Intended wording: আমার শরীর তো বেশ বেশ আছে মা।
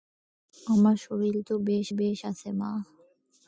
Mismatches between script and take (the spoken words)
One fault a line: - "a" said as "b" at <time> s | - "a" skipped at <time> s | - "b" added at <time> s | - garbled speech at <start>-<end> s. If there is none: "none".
none